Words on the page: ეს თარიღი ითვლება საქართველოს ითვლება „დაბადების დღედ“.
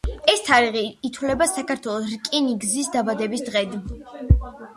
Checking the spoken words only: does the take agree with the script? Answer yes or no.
no